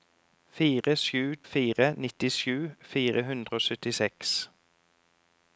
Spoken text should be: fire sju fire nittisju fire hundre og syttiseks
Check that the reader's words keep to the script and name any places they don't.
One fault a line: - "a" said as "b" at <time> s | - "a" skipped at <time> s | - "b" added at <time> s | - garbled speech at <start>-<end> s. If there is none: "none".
none